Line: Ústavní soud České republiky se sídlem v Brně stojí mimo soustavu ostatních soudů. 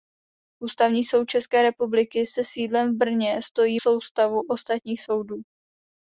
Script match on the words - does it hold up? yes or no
no